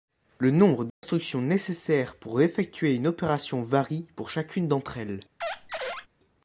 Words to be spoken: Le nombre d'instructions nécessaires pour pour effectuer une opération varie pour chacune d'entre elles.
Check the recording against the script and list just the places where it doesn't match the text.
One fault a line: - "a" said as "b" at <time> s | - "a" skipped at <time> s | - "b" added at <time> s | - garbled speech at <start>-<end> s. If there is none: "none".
- "pour" skipped at 2.4 s